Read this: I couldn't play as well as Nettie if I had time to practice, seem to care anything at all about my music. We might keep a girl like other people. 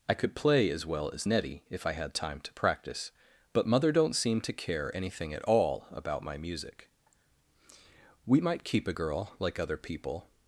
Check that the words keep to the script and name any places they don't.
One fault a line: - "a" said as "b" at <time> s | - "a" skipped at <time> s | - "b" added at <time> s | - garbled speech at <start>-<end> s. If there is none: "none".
- "couldn't" said as "could" at 0.1 s
- "but mother don't" added at 3.5 s